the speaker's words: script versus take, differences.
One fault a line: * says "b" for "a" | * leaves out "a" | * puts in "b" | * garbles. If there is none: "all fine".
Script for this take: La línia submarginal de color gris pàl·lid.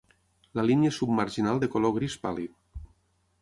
all fine